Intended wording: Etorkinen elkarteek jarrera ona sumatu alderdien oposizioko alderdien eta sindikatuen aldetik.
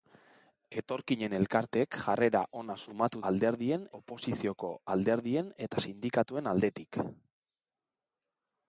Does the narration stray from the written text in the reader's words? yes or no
no